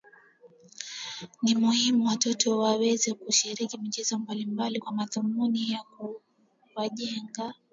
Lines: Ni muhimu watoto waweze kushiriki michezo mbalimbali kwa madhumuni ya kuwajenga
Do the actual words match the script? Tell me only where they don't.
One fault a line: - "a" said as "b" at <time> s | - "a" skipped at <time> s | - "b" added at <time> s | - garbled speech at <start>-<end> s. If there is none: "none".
none